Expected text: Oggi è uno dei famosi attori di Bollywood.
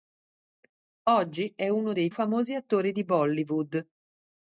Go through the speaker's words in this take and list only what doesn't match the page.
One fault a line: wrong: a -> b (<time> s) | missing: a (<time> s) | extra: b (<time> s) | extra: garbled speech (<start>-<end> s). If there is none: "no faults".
no faults